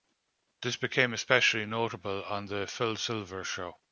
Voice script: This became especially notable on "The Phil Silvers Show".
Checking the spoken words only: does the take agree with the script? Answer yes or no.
yes